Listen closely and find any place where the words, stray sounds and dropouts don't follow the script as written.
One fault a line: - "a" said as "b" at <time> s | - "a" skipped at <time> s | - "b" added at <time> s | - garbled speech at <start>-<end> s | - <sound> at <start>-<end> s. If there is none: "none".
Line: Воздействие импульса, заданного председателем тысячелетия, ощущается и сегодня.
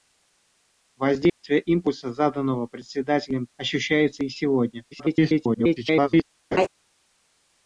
- dropout at 1.3-1.4 s
- "тысячелетия" skipped at 3.5 s
- garbled speech at 4.9-6.2 s
- laugh at 6.5-6.7 s